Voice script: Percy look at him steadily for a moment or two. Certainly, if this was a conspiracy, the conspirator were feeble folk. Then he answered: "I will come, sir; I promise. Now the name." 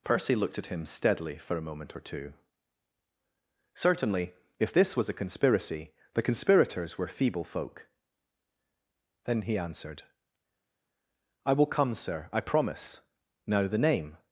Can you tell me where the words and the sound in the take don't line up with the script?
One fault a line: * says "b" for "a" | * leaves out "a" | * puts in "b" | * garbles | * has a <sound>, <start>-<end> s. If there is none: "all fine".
* says "looked" for "look"
* says "conspirators" for "conspirator"